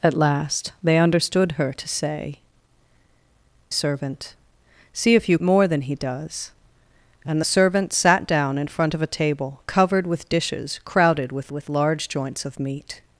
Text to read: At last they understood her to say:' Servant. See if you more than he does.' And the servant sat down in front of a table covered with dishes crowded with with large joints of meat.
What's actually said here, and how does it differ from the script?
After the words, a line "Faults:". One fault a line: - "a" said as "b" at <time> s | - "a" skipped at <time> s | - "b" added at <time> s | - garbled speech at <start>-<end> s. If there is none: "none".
At last they understood her to say:' Servant. See if you more than he does.' And the servant sat down in front of a table covered with dishes crowded with with large joints of meat.
Faults:
none